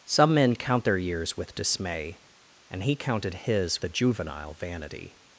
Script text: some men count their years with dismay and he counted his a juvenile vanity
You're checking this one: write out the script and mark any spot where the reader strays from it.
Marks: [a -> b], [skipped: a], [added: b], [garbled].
some men count their years with dismay and he counted his a juvenile vanity